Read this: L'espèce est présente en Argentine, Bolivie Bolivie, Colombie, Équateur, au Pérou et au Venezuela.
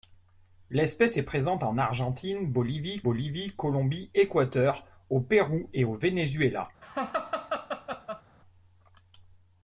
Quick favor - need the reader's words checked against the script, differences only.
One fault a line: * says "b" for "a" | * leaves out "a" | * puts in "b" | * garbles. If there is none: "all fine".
all fine